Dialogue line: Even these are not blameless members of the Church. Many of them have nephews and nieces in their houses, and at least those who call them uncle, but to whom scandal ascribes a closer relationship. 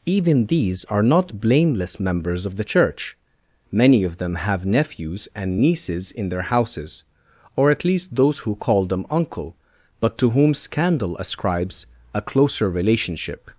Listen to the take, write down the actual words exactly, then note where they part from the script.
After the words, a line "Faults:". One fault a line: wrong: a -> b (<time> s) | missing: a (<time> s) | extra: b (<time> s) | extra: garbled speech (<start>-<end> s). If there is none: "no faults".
Even these are not blameless members of the Church. Many of them have nephews and nieces in their houses, or at least those who call them uncle, but to whom scandal ascribes a closer relationship.
Faults:
wrong: and -> or (7.6 s)